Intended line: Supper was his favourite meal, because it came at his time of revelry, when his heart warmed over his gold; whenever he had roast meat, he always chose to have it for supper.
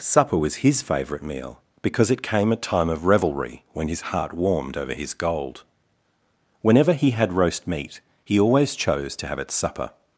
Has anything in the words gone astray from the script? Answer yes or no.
yes